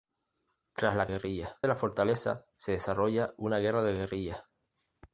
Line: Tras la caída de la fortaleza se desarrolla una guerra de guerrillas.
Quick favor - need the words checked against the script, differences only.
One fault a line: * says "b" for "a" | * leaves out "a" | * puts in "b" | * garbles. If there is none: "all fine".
* says "guerrillas" for "caída"